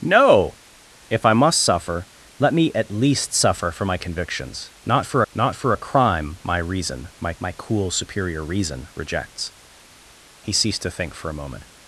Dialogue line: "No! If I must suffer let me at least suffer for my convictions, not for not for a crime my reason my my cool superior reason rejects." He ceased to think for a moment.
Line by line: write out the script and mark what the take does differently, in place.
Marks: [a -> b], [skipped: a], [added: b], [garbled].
"No! If I must suffer let me at least suffer for my convictions, not for not for a crime my reason my my cool superior reason rejects." He ceased to think for a moment.